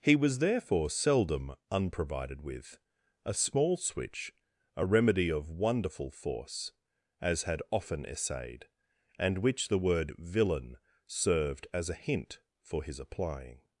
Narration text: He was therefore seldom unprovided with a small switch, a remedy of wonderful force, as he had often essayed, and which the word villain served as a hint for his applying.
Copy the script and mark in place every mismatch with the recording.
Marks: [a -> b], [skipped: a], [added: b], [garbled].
He was therefore seldom unprovided with a small switch, a remedy of wonderful force, as [skipped: he] had often essayed, and which the word villain served as a hint for his applying.